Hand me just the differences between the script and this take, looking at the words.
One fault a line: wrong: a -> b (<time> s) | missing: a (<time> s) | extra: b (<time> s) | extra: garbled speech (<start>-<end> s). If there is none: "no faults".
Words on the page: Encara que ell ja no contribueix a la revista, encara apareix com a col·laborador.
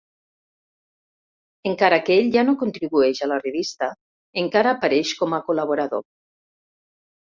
no faults